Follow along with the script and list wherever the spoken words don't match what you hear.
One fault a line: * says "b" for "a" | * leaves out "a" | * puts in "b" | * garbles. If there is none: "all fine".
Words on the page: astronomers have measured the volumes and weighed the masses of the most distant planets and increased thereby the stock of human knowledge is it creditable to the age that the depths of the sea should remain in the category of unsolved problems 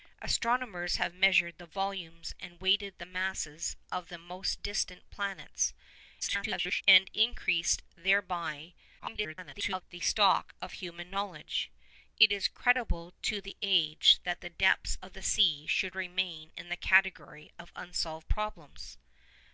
* garbles
* garbles